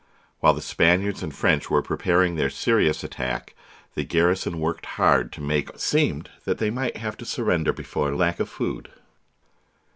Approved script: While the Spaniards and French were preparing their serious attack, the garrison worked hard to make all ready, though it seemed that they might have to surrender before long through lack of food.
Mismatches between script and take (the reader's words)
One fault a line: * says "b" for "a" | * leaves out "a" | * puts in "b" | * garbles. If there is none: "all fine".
* leaves out "all ready though"
* leaves out "long through"